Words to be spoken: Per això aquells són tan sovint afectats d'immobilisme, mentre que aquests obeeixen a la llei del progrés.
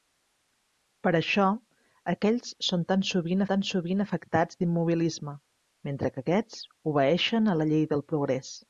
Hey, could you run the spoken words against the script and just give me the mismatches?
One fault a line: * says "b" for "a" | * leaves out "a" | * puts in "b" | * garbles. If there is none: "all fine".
* puts in "tan sovint"